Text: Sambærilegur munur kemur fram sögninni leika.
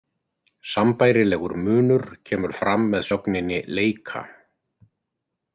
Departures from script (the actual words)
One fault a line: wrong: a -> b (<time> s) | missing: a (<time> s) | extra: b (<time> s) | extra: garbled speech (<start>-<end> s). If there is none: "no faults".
extra: með (3.0 s)